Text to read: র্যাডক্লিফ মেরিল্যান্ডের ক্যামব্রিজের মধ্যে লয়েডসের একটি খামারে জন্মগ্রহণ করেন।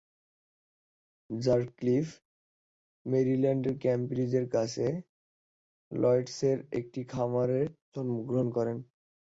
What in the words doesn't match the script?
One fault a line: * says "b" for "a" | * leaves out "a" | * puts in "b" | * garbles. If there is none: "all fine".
* says "কাছে" for "মধ্যে"